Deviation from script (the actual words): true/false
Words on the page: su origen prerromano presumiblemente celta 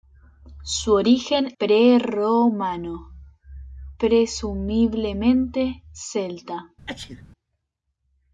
false